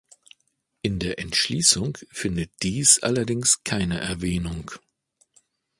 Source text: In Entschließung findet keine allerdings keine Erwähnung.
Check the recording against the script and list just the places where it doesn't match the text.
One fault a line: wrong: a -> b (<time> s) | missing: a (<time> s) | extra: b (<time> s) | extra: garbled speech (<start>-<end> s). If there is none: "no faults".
extra: der (1.0 s)
wrong: keine -> dies (2.6 s)